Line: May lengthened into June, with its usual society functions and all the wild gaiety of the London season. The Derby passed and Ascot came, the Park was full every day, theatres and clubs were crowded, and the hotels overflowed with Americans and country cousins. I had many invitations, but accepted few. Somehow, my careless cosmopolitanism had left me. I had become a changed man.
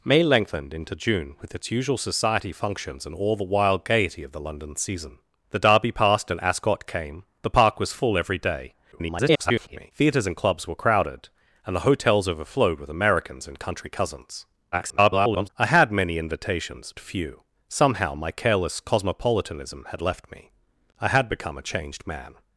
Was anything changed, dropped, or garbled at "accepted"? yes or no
yes